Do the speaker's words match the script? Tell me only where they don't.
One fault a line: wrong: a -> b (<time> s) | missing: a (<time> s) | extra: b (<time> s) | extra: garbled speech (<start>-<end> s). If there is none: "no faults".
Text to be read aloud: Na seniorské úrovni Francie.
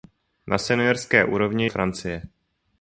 no faults